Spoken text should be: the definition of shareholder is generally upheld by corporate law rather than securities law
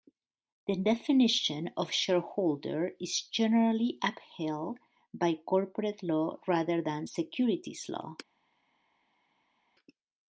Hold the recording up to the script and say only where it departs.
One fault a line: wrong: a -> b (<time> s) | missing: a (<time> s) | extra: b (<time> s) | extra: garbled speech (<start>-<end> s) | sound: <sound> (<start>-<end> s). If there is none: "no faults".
no faults